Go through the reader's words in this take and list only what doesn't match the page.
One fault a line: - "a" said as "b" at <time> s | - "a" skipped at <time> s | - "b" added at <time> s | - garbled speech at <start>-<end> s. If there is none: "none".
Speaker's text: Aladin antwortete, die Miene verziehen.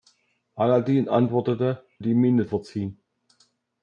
none